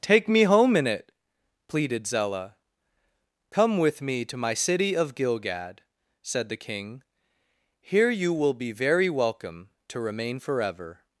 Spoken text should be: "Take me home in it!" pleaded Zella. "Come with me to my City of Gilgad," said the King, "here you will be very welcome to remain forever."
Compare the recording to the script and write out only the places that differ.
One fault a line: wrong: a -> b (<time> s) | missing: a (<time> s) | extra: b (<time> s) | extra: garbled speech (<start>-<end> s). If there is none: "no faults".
no faults